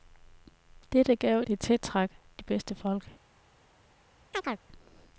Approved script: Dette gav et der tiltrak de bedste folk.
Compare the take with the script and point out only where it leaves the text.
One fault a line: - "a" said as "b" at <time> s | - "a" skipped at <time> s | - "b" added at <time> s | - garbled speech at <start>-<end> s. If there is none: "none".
none